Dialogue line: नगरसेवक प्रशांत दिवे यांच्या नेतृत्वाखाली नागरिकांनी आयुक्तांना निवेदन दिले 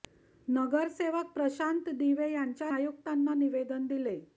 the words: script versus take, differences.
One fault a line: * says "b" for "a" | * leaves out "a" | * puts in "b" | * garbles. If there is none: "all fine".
* leaves out "नेतृत्वाखाली नागरिकांनी"